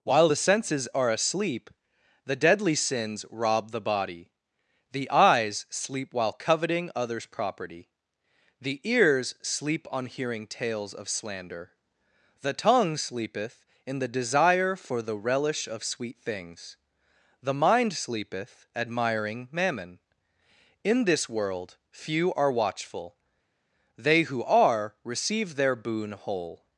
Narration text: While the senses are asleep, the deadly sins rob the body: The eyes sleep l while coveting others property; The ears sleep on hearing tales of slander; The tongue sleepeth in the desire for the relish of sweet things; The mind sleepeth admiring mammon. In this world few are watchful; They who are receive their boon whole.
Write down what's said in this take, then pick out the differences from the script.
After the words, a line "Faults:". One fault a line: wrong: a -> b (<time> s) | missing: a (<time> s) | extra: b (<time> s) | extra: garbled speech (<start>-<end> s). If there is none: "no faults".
While the senses are asleep, the deadly sins rob the body: The eyes sleep while coveting others property; The ears sleep on hearing tales of slander; The tongue sleepeth in the desire for the relish of sweet things; The mind sleepeth admiring mammon. In this world few are watchful; They who are receive their boon whole.
Faults:
missing: l (6.1 s)